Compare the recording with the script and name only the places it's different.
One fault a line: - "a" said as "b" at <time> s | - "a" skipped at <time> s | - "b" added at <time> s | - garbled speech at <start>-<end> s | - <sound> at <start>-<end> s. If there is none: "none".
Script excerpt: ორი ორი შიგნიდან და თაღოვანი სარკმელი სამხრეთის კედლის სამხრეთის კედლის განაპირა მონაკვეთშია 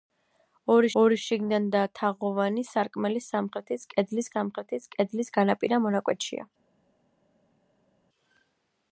none